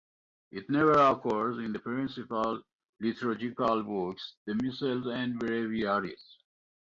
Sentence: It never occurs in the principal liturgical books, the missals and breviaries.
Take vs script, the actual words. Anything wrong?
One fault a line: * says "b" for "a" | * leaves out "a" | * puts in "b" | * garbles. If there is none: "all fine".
all fine